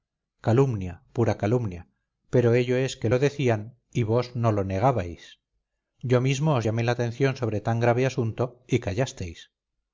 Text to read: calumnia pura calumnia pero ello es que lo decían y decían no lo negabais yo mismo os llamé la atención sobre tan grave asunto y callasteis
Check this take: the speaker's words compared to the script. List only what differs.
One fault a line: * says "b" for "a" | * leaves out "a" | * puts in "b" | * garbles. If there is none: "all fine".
* says "vos" for "decían"